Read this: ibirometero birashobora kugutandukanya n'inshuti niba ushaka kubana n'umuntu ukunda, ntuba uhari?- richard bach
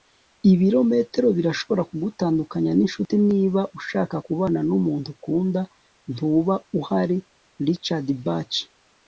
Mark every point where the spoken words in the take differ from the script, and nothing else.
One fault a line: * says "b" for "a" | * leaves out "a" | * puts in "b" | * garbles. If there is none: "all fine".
all fine